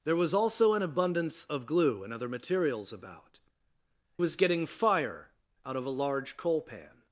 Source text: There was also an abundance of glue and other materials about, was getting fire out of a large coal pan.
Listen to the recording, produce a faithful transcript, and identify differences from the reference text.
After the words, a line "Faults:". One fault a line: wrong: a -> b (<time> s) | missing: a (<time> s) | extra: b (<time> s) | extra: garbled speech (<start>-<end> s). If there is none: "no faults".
There was also an abundance of glue and other materials about, was getting fire out of a large coal pan.
Faults:
no faults